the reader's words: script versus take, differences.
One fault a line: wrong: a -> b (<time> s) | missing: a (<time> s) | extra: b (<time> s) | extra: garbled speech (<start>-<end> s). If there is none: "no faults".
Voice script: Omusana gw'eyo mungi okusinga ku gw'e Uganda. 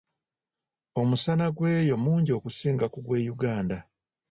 no faults